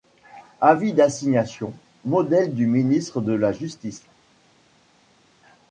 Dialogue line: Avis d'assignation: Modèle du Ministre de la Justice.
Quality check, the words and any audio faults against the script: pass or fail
pass